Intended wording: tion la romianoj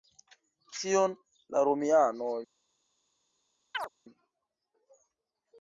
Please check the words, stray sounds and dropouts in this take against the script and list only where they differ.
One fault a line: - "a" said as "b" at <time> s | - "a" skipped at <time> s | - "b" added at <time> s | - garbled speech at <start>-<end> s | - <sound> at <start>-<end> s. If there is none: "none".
- chirp at 3.7-3.9 s